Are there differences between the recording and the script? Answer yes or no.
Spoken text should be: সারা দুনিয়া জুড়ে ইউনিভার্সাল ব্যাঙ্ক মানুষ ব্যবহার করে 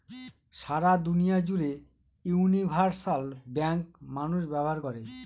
no